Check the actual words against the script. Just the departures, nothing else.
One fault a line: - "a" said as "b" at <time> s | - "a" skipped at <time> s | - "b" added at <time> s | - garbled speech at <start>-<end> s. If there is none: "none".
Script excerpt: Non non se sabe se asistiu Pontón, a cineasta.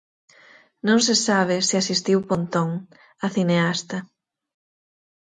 - "non" skipped at 1.0 s